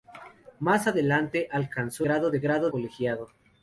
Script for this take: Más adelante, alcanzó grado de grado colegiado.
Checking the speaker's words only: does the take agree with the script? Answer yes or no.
yes